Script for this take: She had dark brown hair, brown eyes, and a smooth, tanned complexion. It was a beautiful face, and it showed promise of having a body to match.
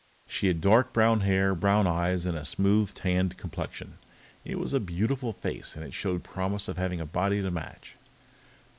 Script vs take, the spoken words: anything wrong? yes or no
no